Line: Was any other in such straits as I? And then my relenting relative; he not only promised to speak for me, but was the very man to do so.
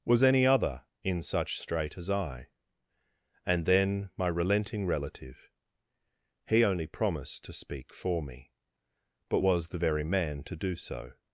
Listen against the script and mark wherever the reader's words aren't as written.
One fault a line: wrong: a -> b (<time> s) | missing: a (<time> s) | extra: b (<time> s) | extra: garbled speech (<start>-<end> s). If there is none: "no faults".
wrong: straits -> strait (1.6 s)
missing: not (6.6 s)